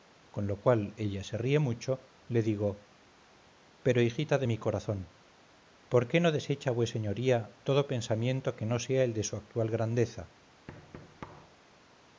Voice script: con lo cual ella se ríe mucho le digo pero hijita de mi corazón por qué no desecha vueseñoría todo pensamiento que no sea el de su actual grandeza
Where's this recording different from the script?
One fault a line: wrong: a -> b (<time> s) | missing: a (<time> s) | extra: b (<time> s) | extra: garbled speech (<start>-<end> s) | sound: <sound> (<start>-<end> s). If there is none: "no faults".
sound: thud (10.7-11.6 s)